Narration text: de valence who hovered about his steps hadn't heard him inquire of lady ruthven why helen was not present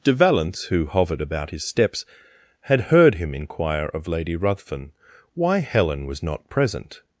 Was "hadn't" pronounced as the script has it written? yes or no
no